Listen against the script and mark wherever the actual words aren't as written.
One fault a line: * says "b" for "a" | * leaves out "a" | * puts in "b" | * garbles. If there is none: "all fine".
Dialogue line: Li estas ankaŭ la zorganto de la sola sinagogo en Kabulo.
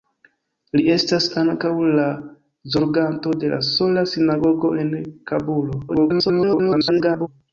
* garbles